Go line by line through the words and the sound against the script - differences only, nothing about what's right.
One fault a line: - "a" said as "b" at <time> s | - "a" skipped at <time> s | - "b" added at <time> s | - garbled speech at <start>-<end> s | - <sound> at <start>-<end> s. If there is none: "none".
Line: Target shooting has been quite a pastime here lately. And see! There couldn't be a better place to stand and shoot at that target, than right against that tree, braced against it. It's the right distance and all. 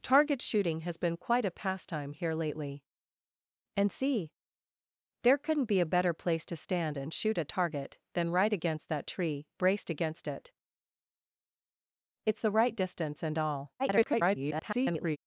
- "that" skipped at 7.5 s
- garbled speech at 13.8-15.2 s